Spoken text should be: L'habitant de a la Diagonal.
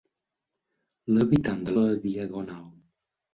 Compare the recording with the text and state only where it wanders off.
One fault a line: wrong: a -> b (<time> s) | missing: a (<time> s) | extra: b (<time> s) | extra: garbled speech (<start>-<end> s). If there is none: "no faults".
no faults